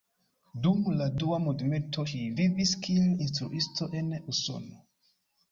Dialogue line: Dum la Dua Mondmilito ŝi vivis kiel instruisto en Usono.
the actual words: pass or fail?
pass